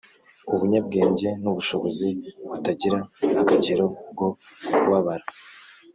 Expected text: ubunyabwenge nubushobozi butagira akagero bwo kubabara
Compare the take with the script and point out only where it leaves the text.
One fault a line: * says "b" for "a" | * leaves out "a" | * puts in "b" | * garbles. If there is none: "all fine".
all fine